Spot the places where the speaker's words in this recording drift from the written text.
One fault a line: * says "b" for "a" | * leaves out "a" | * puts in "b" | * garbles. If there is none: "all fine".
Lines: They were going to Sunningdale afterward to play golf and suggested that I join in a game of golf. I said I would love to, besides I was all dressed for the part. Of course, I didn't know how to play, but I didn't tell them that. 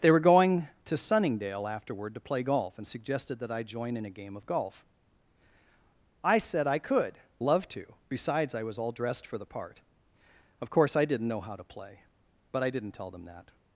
* says "could" for "would"